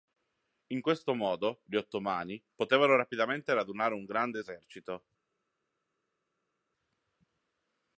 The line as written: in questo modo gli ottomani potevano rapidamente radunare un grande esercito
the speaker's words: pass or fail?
pass